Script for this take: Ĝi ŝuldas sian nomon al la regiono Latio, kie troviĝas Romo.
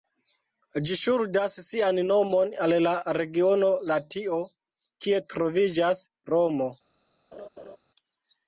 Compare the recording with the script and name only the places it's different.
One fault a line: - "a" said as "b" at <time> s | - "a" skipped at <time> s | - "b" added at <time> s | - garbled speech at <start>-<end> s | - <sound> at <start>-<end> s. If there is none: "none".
- laugh at 7.3-7.8 s